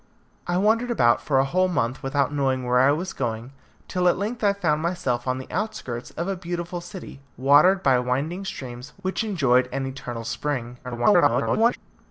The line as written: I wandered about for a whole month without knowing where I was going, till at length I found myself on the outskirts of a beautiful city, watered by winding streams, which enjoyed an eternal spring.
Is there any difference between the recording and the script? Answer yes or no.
yes